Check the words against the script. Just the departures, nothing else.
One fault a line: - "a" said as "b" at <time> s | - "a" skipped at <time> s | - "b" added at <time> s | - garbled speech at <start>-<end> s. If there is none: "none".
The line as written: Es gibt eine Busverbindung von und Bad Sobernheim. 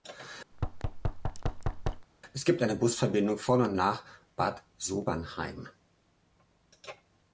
- "nach" added at 3.7 s